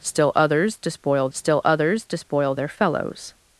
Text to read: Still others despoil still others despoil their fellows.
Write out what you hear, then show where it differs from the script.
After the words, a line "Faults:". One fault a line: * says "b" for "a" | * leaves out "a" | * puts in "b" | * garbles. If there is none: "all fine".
Still others despoil still others despoil their fellows.
Faults:
all fine